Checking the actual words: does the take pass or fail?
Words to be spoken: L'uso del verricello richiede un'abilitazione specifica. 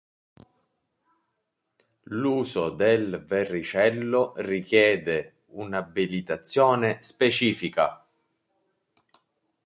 pass